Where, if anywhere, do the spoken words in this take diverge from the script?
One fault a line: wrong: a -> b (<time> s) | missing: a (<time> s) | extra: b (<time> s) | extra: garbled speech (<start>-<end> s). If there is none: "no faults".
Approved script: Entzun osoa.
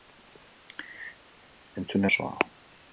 no faults